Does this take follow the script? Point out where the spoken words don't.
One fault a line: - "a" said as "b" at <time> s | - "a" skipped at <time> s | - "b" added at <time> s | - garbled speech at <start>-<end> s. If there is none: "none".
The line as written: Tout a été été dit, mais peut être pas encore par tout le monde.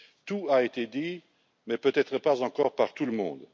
- "été" skipped at 0.9 s